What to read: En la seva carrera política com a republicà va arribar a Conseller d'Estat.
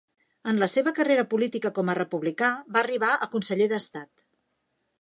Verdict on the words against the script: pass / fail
pass